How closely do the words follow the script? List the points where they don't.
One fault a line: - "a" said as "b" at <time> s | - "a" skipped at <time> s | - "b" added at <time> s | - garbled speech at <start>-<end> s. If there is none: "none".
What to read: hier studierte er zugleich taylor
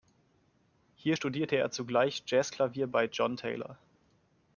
- "jazzklavier bei john" added at 2.2 s